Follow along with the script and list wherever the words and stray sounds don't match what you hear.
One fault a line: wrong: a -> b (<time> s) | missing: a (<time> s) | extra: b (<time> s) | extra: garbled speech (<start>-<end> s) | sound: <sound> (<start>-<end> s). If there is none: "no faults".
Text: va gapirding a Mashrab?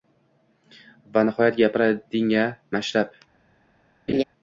extra: nihoyat (1.3 s)
sound: laugh (4.1-4.2 s)